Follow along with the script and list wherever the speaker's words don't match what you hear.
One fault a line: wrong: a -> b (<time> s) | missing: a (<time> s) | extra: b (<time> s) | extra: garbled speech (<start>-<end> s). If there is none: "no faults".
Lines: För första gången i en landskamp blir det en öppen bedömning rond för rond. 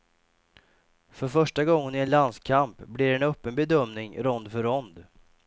no faults